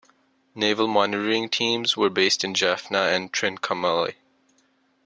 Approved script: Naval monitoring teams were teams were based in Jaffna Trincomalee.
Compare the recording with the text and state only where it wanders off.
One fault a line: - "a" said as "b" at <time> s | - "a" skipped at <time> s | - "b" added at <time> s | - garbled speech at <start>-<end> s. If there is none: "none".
- "teams were" skipped at 2.1 s
- "and" added at 3.0 s